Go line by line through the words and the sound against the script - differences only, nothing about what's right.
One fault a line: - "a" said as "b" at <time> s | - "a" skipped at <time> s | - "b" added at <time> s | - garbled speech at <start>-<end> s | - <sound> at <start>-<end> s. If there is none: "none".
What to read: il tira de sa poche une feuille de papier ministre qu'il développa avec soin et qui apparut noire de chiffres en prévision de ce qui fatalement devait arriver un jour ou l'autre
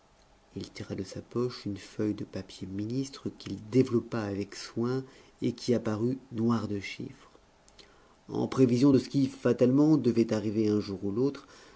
none